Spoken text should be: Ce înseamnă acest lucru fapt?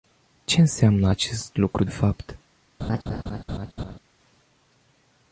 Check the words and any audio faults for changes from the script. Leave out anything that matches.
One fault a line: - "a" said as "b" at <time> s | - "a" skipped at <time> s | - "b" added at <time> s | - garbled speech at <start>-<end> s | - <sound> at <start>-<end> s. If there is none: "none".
- laugh at 2.8-4.0 s